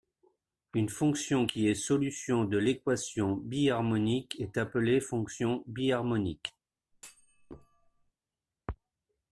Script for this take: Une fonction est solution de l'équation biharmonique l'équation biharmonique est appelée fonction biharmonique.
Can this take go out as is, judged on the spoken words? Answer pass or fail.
fail